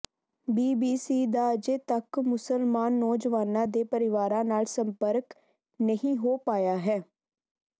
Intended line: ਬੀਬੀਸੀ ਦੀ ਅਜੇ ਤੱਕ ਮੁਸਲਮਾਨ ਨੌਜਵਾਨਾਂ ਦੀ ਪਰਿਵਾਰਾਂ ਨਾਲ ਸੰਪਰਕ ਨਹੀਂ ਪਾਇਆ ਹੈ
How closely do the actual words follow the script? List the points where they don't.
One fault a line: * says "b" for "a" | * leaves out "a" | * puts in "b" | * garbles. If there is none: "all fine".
* says "ਦਾ" for "ਦੀ"
* says "ਦੇ" for "ਦੀ"
* puts in "ਹੋ"